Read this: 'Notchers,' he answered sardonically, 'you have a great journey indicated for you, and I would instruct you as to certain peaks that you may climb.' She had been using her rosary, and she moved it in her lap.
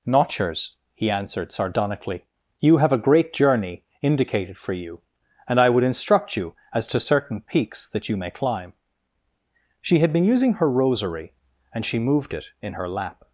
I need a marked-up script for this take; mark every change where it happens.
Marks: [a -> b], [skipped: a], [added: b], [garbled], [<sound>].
'Notchers,' he answered sardonically, 'you have a great journey indicated for you, and I would instruct you as to certain peaks that you may climb.' She had been using her rosary, and she moved it in her lap.